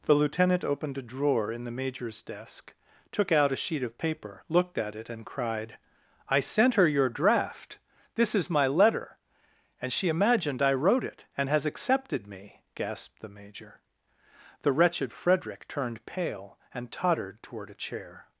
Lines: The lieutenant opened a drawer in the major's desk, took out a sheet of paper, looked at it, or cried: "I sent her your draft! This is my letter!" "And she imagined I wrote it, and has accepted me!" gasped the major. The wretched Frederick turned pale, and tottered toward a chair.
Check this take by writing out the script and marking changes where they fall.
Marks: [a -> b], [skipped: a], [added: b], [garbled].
The lieutenant opened a drawer in the major's desk, took out a sheet of paper, looked at it, [or -> and] cried: "I sent her your draft! This is my letter!" "And she imagined I wrote it, and has accepted me!" gasped the major. The wretched Frederick turned pale, and tottered toward a chair.